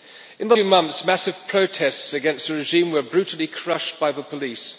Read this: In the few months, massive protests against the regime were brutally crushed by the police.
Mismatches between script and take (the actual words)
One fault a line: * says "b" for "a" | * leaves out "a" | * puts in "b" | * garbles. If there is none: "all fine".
all fine